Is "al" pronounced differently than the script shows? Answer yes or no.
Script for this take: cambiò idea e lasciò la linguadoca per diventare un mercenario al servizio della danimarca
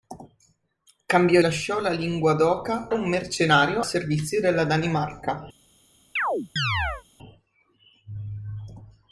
yes